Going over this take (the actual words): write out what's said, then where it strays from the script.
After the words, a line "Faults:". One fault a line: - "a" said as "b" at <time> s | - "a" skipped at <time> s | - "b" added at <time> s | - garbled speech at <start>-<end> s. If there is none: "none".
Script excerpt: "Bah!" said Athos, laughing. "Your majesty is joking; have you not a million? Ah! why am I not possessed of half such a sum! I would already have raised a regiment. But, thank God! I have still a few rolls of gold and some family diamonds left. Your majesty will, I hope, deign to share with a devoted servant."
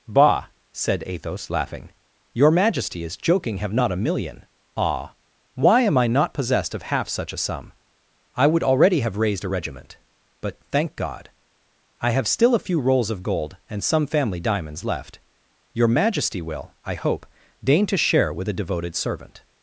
"Bah!" said Athos, laughing. "Your majesty is joking; have not a million? Ah! why am I not possessed of half such a sum! I would already have raised a regiment. But, thank God! I have still a few rolls of gold and some family diamonds left. Your majesty will, I hope, deign to share with a devoted servant."
Faults:
- "you" skipped at 3.7 s